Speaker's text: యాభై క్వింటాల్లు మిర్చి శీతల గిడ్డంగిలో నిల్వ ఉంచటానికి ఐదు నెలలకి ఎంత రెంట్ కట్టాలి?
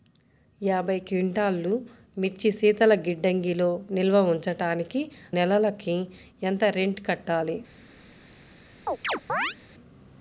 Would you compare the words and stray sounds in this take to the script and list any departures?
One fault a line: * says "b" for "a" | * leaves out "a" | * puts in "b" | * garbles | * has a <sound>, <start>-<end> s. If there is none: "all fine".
* leaves out "ఐదు"
* has a chirp, 8.9-9.6 s